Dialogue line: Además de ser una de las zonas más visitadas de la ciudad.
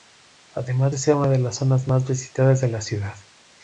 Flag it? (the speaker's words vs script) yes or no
no